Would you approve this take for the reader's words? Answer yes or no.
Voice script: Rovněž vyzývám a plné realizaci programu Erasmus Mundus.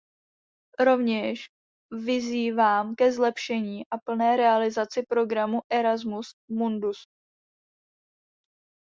no